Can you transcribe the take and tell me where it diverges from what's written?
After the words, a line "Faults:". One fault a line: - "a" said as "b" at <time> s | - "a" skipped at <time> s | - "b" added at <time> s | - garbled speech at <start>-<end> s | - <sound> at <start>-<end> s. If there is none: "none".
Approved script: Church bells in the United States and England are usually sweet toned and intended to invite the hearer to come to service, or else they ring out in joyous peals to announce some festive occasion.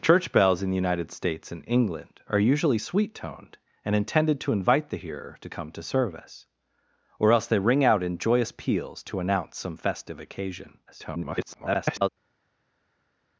Church bells in the United States and England are usually sweet toned and intended to invite the hearer to come to service, or else they ring out in joyous peals to announce some festive occasion. [garbled]
Faults:
- garbled speech at 10.9-12.1 s